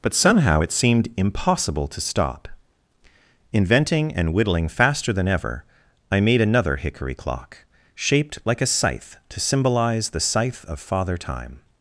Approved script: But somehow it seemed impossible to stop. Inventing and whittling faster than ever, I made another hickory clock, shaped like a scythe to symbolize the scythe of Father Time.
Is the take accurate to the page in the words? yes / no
yes